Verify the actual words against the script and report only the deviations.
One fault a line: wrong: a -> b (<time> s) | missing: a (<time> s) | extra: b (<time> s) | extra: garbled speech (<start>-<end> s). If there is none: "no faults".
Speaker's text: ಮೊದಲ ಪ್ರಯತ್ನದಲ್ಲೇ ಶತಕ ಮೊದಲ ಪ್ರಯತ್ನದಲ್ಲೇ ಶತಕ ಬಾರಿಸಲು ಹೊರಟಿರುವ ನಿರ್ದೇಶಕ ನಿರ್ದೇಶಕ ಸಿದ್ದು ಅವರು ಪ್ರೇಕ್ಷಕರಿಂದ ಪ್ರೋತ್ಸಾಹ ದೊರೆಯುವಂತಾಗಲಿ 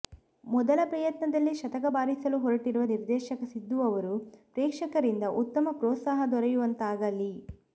missing: ಮೊದಲ ಪ್ರಯತ್ನದಲ್ಲೇ ಶತಕ (1.9 s)
missing: ನಿರ್ದೇಶಕ (3.4 s)
extra: ಉತ್ತಮ (5.4 s)